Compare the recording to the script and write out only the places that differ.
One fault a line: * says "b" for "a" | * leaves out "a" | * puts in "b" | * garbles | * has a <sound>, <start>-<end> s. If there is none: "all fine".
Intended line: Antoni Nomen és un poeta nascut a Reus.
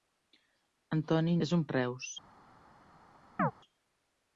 * leaves out "Nomen"
* leaves out "poeta nascut"
* has a chirp, 3.4-3.5 s